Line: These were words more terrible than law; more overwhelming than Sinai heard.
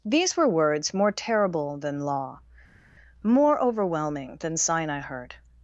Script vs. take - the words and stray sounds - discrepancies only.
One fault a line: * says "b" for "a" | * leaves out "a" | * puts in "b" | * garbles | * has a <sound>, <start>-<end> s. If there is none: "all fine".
all fine